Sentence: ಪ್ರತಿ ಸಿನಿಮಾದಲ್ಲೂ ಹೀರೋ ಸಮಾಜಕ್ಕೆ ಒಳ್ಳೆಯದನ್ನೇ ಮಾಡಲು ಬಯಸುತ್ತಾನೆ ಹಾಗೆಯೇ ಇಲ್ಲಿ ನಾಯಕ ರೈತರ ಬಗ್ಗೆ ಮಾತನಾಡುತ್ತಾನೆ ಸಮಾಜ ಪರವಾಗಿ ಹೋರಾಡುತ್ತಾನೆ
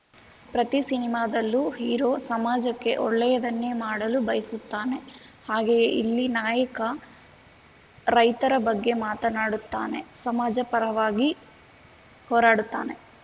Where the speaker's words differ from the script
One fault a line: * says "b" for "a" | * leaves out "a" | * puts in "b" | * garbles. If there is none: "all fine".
all fine